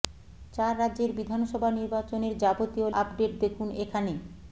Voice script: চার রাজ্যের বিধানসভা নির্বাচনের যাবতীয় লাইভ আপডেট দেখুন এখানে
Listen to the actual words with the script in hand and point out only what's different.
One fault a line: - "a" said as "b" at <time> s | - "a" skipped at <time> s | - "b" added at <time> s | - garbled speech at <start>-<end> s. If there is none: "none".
- "লাইভ" skipped at 2.9 s